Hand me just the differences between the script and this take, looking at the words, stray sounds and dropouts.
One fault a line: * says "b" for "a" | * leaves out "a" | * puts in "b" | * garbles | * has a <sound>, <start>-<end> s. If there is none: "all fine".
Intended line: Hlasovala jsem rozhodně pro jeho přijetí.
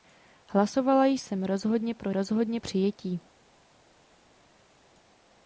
* says "rozhodně" for "jeho"